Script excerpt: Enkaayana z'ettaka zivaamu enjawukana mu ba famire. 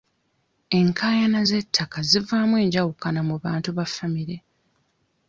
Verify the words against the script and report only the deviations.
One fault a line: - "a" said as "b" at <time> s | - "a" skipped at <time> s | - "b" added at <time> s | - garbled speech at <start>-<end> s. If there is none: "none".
- "bantu" added at 3.4 s